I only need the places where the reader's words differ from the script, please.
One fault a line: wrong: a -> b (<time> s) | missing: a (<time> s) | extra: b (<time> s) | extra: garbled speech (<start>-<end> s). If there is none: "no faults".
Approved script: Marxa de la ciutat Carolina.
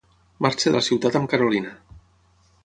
extra: amb (1.2 s)